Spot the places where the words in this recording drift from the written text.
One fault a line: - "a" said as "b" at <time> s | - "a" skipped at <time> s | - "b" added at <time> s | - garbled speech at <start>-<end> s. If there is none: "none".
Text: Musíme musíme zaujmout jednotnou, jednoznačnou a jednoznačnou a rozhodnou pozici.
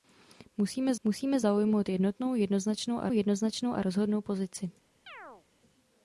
none